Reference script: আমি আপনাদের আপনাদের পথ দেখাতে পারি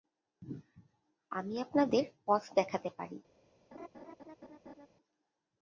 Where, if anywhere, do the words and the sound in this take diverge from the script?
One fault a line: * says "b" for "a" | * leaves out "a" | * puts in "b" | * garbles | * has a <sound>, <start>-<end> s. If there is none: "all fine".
* leaves out "আপনাদের"
* has a laugh, 3.7-4.9 s